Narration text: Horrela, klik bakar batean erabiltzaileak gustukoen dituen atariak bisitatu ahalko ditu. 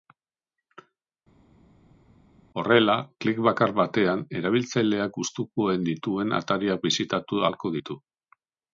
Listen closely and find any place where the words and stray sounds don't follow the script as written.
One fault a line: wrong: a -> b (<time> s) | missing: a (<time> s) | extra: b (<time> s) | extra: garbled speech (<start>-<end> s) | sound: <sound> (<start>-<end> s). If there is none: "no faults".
no faults